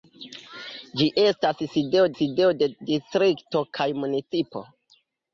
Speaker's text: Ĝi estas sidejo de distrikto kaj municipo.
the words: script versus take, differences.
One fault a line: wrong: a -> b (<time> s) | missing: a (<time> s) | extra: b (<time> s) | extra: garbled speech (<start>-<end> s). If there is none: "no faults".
extra: sidejo (2.2 s)